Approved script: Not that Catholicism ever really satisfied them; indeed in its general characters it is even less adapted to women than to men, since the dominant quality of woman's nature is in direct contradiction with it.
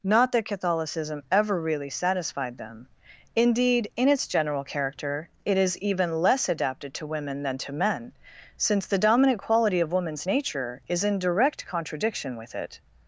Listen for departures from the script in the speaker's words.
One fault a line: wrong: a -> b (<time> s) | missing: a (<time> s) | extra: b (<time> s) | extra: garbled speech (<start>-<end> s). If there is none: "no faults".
wrong: characters -> character (4.6 s)